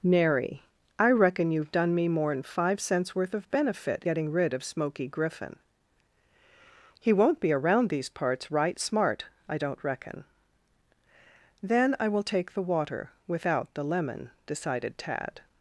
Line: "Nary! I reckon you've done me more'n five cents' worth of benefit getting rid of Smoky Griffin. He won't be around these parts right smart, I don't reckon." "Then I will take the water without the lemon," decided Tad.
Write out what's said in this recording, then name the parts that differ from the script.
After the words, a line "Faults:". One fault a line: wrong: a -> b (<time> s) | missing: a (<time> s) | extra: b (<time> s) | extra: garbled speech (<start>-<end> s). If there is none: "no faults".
"Nary! I reckon you've done me more'n five cents' worth of benefit getting rid of Smoky Griffin. He won't be around these parts right smart, I don't reckon." "Then I will take the water without the lemon," decided Tad.
Faults:
no faults